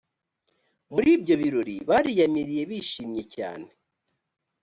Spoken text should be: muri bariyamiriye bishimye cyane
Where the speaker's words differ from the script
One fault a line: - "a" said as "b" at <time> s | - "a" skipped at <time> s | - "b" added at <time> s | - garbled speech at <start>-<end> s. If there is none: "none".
- "ibyo birori" added at 1.2 s